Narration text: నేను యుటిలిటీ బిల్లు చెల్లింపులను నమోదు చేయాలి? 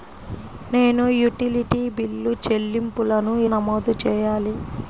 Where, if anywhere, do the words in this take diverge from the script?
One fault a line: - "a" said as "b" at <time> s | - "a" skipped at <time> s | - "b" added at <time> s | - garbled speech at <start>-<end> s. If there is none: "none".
none